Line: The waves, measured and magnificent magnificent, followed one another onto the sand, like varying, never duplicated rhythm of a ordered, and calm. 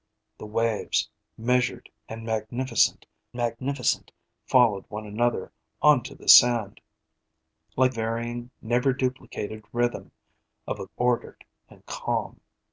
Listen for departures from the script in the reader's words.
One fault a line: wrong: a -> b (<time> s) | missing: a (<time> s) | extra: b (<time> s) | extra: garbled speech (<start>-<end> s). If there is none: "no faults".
no faults